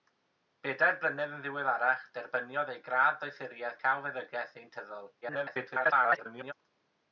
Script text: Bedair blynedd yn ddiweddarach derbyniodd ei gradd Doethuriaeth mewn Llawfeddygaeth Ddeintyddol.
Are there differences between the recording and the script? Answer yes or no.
yes